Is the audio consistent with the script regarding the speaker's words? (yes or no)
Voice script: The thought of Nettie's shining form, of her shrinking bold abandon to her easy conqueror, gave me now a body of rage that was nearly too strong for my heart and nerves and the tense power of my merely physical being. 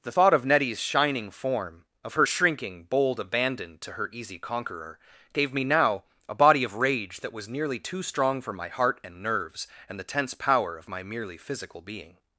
yes